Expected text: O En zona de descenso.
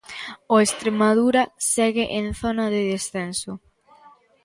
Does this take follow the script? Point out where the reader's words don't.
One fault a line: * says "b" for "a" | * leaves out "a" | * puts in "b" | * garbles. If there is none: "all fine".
* puts in "Estremadura segue"